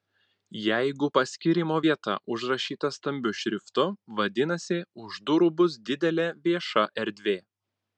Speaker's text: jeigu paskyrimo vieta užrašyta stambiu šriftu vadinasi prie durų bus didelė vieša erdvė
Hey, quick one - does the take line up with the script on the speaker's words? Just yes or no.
no